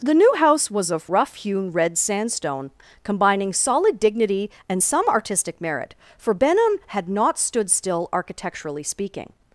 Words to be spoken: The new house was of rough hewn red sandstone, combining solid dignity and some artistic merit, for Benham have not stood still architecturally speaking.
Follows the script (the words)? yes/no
no